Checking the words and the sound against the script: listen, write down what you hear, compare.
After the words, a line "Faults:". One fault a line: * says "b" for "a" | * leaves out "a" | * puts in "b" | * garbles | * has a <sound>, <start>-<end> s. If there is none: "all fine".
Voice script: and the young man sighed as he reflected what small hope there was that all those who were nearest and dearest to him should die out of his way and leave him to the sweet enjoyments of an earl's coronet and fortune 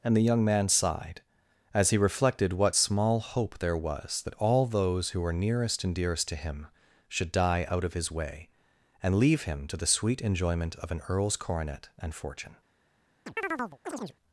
and the young man sighed as he reflected what small hope there was that all those who were nearest and dearest to him should die out of his way and leave him to the sweet enjoyment of an earl's coronet and fortune
Faults:
* says "enjoyment" for "enjoyments"
* has a chirp, 13.3-14.2 s